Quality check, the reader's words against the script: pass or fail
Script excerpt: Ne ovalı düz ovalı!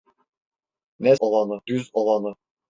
pass